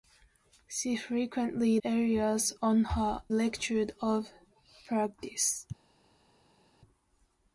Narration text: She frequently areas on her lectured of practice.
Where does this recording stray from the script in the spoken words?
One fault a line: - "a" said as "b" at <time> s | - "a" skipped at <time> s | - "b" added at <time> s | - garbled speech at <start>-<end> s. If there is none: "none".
none